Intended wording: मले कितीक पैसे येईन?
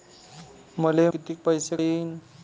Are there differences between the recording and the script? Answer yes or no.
no